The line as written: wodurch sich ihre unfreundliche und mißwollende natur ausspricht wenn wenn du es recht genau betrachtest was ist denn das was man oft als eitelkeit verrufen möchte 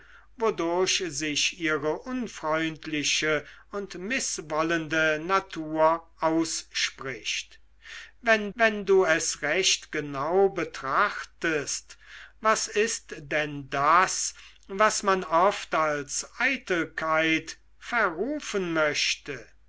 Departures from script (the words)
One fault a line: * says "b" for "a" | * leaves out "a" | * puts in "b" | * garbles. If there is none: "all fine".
all fine